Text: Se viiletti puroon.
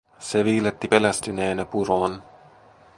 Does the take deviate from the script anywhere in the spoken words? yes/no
yes